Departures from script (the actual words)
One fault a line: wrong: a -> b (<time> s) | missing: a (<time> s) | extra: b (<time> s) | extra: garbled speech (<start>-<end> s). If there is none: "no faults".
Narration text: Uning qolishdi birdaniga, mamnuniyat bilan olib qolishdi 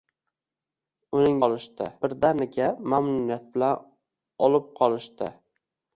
no faults